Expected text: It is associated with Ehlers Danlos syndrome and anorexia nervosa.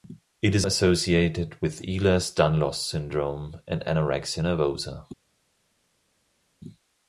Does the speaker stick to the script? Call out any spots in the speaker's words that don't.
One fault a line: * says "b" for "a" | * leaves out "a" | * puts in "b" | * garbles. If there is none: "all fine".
all fine